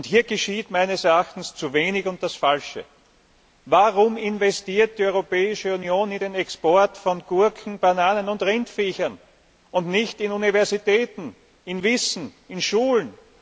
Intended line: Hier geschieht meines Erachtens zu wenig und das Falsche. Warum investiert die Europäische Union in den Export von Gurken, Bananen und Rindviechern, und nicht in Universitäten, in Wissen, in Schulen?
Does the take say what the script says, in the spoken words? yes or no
yes